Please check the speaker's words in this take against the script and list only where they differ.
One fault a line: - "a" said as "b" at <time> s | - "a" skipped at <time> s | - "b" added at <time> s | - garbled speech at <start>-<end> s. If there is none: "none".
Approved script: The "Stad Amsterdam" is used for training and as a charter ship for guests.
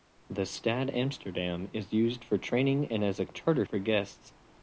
- "ship" skipped at 3.7 s